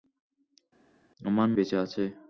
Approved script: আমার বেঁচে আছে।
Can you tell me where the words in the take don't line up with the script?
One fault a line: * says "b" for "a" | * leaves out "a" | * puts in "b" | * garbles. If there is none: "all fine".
all fine